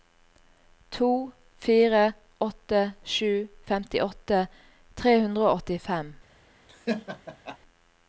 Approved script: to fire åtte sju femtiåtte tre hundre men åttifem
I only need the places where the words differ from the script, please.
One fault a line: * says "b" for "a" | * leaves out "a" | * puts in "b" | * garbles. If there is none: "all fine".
* says "og" for "men"